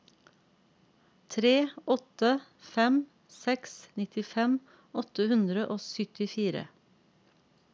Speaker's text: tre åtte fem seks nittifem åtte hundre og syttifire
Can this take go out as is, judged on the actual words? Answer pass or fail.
pass